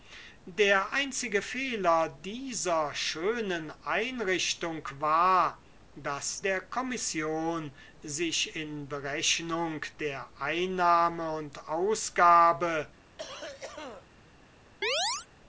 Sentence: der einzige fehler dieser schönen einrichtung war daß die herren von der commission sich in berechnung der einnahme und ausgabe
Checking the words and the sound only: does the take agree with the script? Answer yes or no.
no